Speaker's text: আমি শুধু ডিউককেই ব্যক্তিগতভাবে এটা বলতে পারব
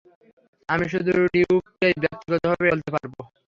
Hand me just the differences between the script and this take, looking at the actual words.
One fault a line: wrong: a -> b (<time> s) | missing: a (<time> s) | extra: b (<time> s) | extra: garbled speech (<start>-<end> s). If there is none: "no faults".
missing: এটা (2.7 s)